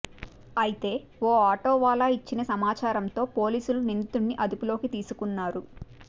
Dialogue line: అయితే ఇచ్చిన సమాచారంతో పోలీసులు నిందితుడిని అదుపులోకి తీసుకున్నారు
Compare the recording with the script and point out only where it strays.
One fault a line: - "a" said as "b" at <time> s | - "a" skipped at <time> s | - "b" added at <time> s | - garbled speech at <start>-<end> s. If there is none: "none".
- "ఓ ఆటోవాలా" added at 1.2 s